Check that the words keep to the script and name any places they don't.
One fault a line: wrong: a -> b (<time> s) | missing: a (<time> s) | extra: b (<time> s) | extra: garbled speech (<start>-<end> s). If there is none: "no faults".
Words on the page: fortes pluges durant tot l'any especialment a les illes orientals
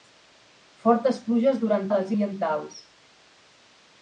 missing: tot l'any especialment (1.9 s)
missing: illes (2.1 s)